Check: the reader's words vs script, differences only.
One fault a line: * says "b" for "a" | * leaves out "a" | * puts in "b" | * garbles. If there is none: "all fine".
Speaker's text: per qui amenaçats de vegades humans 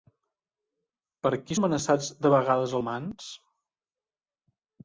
all fine